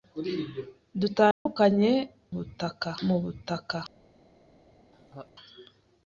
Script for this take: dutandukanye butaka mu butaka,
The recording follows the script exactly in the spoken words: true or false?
true